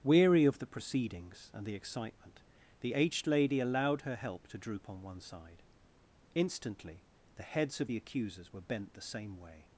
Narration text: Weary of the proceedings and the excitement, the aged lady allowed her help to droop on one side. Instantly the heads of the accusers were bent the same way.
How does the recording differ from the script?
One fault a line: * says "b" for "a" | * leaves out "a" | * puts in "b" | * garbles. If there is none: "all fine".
all fine